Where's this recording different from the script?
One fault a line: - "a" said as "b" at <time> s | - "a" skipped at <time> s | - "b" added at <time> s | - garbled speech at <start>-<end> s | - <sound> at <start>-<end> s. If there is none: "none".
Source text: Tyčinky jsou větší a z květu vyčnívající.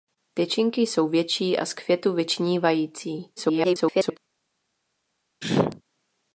- garbled speech at 3.4-4.2 s
- sneeze at 5.4-5.8 s